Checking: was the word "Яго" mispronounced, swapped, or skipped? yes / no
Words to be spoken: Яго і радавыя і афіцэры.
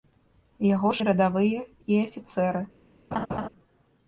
no